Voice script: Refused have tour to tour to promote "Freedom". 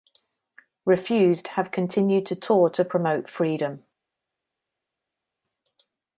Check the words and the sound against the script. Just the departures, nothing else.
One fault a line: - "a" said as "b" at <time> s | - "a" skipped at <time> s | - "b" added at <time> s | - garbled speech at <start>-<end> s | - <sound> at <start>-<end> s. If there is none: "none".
- "tour" said as "continued" at 1.7 s